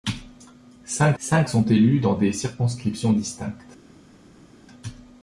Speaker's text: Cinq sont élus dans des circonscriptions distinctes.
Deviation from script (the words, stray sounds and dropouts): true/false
true